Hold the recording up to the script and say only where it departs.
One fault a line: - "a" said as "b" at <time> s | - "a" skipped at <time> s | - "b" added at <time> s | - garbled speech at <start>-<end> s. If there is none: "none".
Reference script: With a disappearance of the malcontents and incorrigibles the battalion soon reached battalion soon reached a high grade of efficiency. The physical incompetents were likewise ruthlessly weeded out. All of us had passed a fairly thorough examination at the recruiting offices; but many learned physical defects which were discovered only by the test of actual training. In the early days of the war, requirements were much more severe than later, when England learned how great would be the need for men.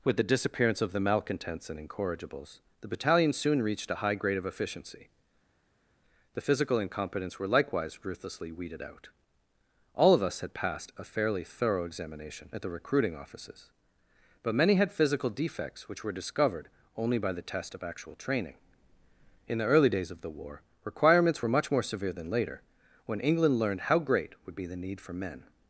- "a" said as "the" at 0.2 s
- "battalion soon reached" skipped at 3.9 s
- "learned" said as "had" at 14.7 s